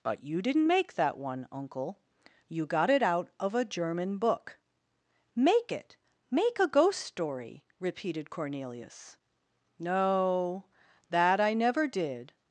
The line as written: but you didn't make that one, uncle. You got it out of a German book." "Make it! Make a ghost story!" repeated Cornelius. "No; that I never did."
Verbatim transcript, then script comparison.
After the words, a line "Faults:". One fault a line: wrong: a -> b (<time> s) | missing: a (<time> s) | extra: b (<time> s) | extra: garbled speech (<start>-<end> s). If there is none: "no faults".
but you didn't make that one, uncle. You got it out of a German book." "Make it! Make a ghost story!" repeated Cornelius. "No; that I never did."
Faults:
no faults